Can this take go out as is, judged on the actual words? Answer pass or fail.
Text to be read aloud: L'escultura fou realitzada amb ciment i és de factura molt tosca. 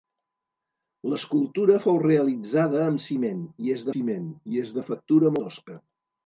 fail